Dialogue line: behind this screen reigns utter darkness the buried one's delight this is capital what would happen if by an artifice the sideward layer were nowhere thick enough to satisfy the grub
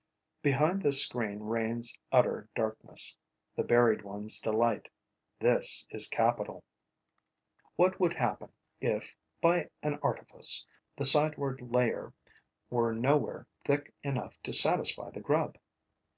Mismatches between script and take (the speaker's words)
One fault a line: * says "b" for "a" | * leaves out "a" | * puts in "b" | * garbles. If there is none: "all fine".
all fine